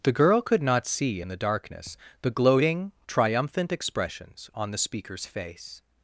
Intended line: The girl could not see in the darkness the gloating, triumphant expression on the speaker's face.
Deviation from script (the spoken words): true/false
true